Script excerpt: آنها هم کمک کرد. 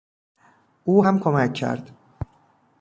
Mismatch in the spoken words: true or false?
true